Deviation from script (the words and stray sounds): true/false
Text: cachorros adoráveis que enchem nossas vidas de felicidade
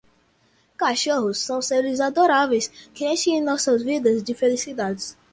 true